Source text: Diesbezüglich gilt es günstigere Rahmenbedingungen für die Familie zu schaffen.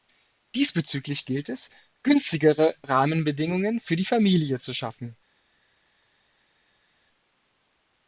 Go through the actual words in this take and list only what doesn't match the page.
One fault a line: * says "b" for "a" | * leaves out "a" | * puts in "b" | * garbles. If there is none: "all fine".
all fine